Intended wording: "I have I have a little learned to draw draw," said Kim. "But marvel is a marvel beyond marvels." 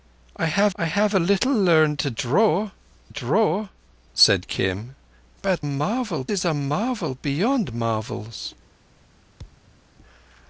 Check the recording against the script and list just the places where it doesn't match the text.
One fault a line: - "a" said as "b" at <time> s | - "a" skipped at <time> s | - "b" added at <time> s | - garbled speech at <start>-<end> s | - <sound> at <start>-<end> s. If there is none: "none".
- thud at 9.4-9.8 s